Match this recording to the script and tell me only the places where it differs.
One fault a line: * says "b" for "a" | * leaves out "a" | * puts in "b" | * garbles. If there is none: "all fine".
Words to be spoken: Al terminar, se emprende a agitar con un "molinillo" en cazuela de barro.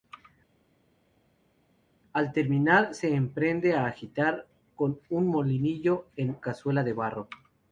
all fine